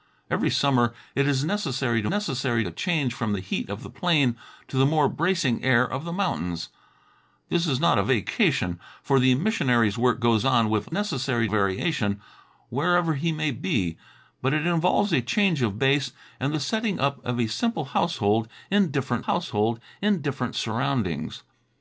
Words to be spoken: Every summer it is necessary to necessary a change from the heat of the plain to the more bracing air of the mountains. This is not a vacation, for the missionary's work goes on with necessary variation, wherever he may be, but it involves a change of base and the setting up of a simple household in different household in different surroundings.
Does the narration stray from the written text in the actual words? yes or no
no